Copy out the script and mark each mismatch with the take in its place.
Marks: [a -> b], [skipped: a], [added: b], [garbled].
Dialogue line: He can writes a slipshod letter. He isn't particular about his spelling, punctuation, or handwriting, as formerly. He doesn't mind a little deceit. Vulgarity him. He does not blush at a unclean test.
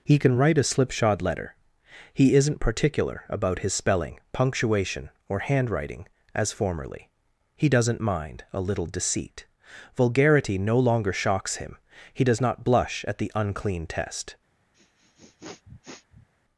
He can [writes -> write] a slipshod letter. He isn't particular about his spelling, punctuation, or handwriting, as formerly. He doesn't mind a little deceit. Vulgarity [added: no longer shocks] him. He does not blush at [a -> the] unclean test.